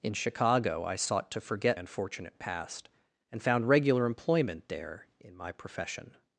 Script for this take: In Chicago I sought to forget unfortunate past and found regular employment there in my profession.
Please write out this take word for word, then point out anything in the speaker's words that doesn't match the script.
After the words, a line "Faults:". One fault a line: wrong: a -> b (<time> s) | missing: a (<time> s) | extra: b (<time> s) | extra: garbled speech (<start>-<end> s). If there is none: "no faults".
In Chicago I sought to forget unfortunate past and found regular employment there in my profession.
Faults:
no faults